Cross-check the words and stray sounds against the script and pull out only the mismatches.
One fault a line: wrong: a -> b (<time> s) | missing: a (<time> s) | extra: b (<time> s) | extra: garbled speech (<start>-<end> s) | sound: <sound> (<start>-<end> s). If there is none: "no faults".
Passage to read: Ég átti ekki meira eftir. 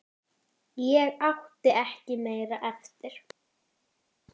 no faults